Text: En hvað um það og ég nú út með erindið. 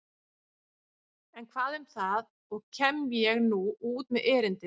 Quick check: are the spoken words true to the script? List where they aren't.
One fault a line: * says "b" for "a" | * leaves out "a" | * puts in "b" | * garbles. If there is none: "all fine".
* puts in "kem"